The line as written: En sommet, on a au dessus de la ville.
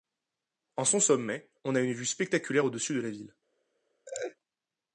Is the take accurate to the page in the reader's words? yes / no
no